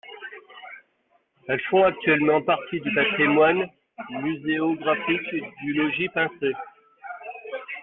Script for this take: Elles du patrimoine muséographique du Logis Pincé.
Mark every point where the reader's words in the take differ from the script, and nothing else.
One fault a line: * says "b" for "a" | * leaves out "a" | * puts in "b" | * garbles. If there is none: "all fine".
* puts in "font actuellement partie"